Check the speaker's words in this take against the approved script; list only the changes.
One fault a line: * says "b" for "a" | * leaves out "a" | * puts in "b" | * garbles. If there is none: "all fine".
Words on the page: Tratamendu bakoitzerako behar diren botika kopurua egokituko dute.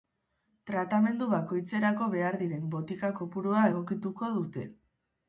all fine